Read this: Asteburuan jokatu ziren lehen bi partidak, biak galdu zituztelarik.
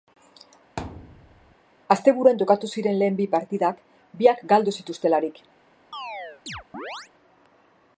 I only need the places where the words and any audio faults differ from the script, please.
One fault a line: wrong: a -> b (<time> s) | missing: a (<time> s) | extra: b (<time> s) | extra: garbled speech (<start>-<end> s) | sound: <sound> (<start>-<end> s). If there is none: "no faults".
sound: thud (0.8-1.6 s)
sound: chirp (5.9-7.1 s)